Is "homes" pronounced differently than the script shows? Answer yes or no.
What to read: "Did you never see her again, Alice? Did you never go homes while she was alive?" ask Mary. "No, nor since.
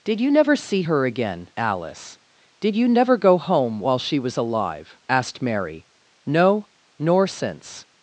yes